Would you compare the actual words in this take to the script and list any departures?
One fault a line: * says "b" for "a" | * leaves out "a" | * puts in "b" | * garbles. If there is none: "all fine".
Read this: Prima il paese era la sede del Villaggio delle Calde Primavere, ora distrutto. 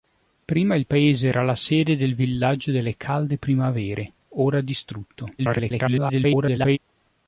* garbles